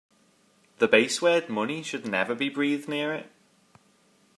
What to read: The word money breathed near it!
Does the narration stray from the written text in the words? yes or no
yes